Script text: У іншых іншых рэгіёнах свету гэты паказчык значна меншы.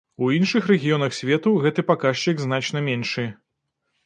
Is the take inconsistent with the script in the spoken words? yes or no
yes